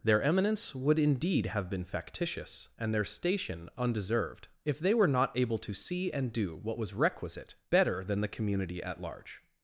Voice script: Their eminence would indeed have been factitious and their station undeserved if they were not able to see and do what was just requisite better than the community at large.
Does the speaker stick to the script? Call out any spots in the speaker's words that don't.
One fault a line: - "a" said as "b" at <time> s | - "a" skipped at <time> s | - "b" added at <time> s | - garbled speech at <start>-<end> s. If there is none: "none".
- "just" skipped at 6.9 s